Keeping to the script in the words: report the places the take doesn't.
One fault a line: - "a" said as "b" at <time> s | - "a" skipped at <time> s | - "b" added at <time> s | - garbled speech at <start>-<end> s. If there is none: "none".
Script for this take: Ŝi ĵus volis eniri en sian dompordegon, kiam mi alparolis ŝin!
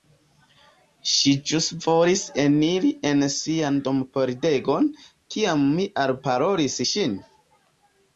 none